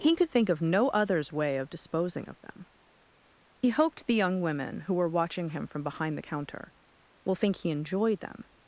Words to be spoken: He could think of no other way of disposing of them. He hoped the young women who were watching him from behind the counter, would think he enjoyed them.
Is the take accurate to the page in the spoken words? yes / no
no